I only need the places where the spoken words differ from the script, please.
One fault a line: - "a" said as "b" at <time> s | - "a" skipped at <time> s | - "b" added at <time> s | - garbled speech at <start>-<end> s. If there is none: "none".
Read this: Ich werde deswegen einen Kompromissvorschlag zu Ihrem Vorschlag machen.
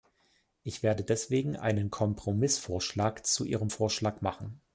none